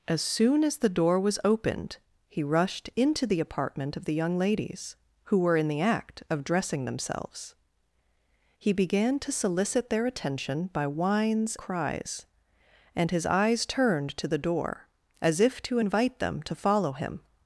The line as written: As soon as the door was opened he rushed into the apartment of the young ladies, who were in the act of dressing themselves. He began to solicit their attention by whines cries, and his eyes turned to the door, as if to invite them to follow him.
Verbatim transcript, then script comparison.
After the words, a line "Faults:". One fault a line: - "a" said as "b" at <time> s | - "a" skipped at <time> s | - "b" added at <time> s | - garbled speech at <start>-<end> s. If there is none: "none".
As soon as the door was opened he rushed into the apartment of the young ladies, who were in the act of dressing themselves. He began to solicit their attention by whines cries, and his eyes turned to the door, as if to invite them to follow him.
Faults:
none